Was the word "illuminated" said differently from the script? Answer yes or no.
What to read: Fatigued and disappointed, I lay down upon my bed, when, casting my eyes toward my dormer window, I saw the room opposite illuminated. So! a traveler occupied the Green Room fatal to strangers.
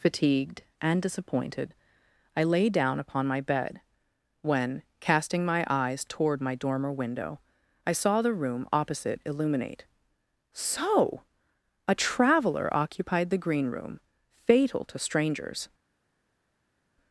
yes